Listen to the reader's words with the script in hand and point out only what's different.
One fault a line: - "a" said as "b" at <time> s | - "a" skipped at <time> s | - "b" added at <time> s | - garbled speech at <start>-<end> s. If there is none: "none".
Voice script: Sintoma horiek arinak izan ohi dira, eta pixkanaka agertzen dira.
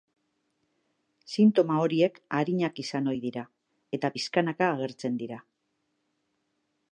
none